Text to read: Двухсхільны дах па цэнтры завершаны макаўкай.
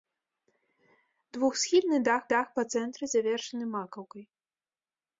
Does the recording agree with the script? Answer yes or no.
no